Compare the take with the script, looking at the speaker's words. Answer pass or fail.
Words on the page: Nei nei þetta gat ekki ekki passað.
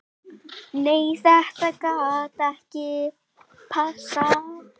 fail